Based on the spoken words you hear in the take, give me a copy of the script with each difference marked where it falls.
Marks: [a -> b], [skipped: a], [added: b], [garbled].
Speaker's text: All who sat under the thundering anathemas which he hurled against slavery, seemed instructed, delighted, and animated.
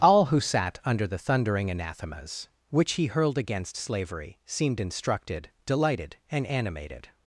All who sat under the thundering anathemas which he hurled against slavery, seemed instructed, delighted, and animated.